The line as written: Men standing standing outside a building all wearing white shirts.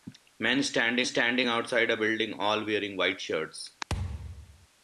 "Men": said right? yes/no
yes